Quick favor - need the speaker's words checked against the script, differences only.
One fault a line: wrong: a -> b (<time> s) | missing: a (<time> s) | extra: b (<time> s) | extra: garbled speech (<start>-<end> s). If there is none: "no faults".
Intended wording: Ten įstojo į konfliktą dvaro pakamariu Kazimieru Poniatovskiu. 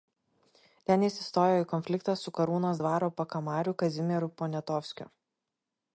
extra: jis (1.1 s)
extra: su Karūnos (2.2 s)